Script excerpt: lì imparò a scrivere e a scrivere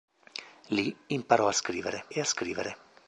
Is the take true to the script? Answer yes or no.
yes